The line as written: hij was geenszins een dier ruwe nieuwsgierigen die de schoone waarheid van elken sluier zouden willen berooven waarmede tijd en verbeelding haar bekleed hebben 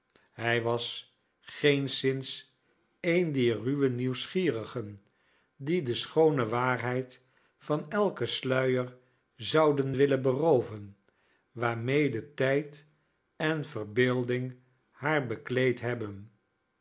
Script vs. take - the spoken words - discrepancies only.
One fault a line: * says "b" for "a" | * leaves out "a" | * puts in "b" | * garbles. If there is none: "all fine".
all fine